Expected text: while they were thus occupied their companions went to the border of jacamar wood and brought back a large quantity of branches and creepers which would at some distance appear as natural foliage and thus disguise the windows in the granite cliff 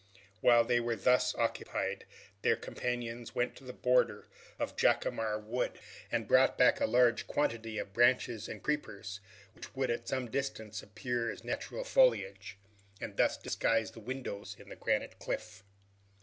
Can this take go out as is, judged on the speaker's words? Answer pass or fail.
pass